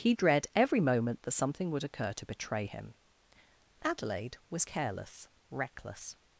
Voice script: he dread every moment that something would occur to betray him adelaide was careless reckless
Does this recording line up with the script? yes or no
yes